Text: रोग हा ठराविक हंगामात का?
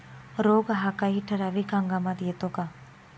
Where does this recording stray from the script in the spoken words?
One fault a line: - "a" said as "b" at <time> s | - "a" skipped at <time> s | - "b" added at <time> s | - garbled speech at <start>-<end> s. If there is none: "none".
- "काही" added at 1.0 s
- "येतो" added at 2.2 s